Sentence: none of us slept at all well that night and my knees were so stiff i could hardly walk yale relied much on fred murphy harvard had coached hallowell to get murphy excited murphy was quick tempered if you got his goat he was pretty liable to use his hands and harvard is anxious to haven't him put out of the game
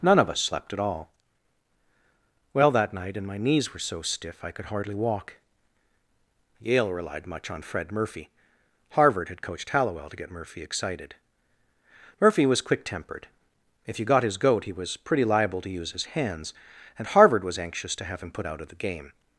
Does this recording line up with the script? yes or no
no